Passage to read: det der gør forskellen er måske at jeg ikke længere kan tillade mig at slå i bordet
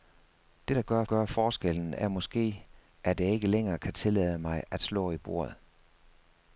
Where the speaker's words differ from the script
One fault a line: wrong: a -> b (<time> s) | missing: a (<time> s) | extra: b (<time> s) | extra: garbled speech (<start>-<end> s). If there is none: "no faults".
extra: gør (1.0 s)